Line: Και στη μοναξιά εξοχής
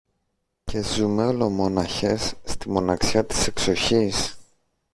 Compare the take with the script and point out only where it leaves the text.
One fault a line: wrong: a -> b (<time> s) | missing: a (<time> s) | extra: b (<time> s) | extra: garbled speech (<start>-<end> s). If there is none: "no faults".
extra: ζούμε ολομόναχες (0.8 s)
extra: της (3.2 s)